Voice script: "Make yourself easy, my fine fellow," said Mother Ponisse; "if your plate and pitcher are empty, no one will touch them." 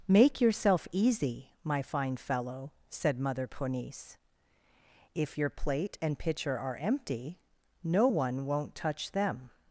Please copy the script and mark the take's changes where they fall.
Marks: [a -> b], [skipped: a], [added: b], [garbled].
"Make yourself easy, my fine fellow," said Mother Ponisse; "if your plate and pitcher are empty, no one [will -> won't] touch them."